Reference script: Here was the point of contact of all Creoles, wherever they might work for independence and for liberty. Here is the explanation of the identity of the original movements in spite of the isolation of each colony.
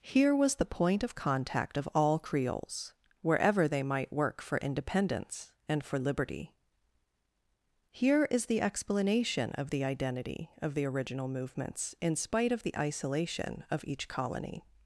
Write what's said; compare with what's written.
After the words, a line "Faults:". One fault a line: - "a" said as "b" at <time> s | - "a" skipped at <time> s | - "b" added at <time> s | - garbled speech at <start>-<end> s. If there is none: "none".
Here was the point of contact of all Creoles, wherever they might work for independence and for liberty. Here is the explanation of the identity of the original movements in spite of the isolation of each colony.
Faults:
none